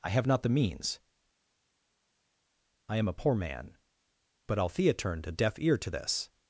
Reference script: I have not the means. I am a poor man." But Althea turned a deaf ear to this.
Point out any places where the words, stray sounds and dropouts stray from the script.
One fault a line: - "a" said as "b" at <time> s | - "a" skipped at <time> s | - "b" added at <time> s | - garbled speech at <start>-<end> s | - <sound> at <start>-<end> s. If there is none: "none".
none